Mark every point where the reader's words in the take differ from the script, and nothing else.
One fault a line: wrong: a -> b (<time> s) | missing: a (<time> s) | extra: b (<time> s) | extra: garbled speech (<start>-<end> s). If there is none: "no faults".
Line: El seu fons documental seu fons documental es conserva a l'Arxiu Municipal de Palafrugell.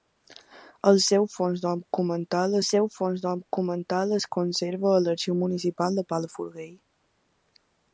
no faults